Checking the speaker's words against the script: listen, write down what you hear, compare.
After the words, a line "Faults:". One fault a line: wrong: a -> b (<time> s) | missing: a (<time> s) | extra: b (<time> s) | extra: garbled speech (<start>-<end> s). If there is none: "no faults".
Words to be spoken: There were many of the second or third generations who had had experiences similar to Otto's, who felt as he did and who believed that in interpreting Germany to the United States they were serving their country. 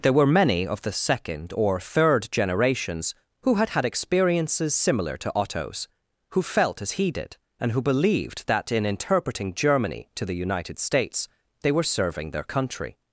There were many of the second or third generations who had had experiences similar to Otto's, who felt as he did and who believed that in interpreting Germany to the United States they were serving their country.
Faults:
no faults